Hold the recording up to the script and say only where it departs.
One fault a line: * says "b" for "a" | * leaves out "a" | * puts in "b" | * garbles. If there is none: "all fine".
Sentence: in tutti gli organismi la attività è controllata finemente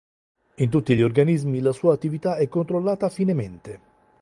* puts in "sua"